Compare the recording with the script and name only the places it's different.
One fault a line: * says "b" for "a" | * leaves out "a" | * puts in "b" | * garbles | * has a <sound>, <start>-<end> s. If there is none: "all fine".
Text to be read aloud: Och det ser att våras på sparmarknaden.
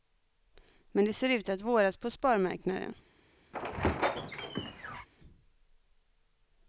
* says "Men" for "Och"
* puts in "ut"
* has a squeak, 3.5-5.1 s